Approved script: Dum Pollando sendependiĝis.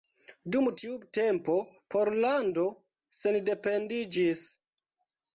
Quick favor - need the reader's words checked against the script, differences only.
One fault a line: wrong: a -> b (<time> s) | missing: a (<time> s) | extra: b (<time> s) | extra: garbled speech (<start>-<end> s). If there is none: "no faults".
extra: tiu tempo (0.8 s)